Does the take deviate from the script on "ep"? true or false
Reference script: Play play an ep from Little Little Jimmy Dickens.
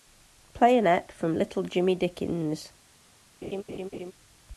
false